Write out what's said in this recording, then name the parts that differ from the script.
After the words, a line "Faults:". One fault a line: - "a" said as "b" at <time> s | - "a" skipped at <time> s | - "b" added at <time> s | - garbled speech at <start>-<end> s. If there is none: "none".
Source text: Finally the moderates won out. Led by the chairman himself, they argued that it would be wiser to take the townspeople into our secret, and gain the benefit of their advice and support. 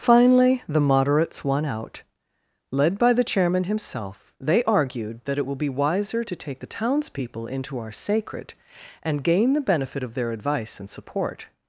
Finally the moderates won out. Led by the chairman himself, they argued that it will be wiser to take the townspeople into our sacred, and gain the benefit of their advice and support.
Faults:
- "would" said as "will" at 5.5 s
- "secret" said as "sacred" at 7.9 s